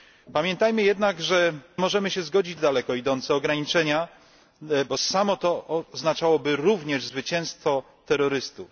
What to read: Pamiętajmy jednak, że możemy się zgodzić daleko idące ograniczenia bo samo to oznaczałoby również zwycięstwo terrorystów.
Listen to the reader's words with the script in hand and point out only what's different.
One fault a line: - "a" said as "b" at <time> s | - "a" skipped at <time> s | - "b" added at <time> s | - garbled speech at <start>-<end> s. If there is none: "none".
none